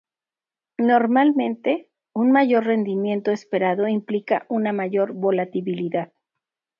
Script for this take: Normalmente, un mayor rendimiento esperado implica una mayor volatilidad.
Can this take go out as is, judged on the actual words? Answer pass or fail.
pass